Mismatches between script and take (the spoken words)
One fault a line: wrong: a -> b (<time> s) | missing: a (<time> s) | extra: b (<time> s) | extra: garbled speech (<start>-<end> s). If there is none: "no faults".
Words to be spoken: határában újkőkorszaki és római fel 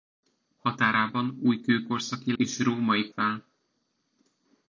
no faults